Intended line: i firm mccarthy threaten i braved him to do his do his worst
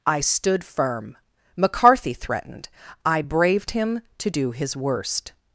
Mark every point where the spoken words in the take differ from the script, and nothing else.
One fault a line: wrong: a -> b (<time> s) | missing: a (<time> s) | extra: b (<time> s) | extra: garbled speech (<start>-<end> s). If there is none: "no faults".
extra: stood (0.2 s)
wrong: threaten -> threatened (2.1 s)
missing: do his (4.8 s)